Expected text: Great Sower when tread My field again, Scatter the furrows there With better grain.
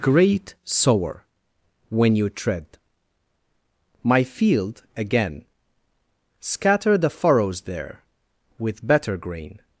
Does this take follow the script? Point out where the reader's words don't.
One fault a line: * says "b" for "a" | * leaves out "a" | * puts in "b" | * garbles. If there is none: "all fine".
* puts in "you"